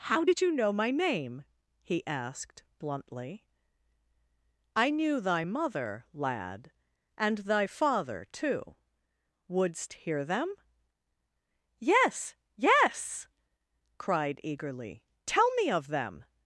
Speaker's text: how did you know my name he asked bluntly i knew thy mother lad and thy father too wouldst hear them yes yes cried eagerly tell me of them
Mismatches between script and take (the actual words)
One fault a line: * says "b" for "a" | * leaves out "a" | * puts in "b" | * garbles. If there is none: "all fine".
all fine